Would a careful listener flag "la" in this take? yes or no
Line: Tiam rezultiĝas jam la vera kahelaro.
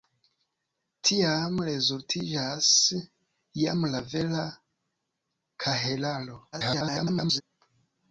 no